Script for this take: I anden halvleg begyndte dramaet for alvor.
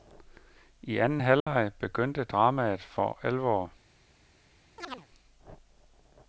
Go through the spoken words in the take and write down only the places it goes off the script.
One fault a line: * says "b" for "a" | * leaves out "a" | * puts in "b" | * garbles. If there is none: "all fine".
all fine